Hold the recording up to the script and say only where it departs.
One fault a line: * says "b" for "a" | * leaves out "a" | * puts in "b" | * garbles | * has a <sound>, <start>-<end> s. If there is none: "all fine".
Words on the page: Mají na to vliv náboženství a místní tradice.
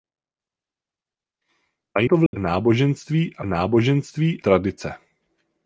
* leaves out "na"
* has a dropout, 2.3-2.3 s
* says "náboženství" for "místní"